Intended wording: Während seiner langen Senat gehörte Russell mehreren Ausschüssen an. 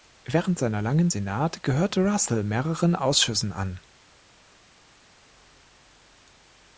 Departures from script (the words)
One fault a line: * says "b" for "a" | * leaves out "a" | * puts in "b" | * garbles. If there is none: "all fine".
all fine